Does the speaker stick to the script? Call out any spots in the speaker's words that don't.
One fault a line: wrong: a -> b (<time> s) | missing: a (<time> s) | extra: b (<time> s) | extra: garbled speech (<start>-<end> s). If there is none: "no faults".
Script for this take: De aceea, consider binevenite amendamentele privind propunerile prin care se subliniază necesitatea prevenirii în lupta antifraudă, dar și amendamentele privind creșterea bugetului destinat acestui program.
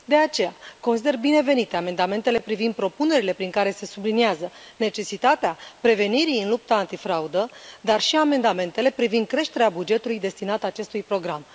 no faults